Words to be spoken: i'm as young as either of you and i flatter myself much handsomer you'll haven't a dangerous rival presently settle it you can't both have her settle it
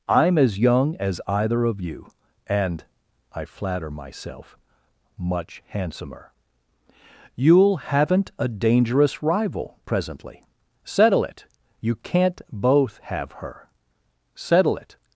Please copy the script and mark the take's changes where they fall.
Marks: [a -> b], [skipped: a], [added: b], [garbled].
i'm as young as either of you and i flatter myself much handsomer you'll haven't a dangerous rival presently settle it you can't both have her settle it